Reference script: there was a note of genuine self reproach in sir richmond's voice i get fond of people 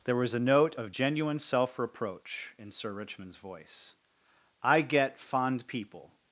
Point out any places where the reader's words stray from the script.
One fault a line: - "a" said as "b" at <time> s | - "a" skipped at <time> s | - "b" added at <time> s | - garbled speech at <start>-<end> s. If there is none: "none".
- "of" skipped at 5.7 s